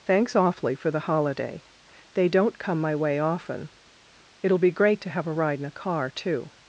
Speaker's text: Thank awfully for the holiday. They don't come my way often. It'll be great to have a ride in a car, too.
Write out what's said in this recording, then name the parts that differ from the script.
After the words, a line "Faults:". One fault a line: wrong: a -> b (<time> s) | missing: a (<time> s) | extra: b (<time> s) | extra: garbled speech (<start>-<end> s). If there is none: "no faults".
Thanks awfully for the holiday. They don't come my way often. It'll be great to have a ride in a car, too.
Faults:
wrong: Thank -> Thanks (0.1 s)